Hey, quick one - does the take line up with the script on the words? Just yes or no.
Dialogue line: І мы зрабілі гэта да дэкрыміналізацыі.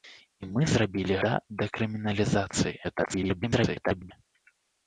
no